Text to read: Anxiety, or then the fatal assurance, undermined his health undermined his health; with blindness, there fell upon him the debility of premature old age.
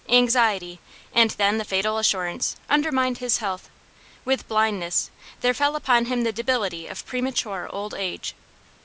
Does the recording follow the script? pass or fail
fail